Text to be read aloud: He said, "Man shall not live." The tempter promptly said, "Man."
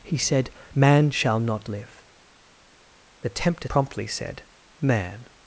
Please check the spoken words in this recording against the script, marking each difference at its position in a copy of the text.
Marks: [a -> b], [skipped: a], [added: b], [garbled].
He said, "Man shall not live." The tempter promptly said, "Man."